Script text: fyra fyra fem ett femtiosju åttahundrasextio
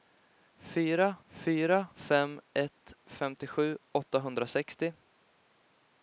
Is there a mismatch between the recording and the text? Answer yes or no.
no